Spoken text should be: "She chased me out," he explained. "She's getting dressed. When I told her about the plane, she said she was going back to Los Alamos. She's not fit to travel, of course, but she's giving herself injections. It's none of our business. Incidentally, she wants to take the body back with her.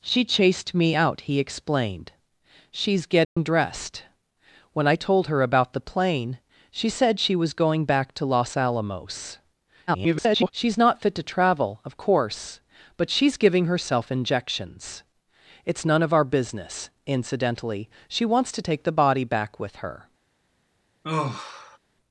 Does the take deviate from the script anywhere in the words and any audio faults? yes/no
yes